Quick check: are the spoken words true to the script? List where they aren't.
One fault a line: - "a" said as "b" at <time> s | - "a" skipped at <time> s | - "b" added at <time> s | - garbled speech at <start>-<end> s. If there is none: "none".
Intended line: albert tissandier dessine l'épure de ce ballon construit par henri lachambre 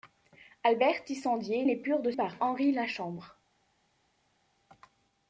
- "dessine" skipped at 1.7 s
- "ce ballon construit" skipped at 2.1 s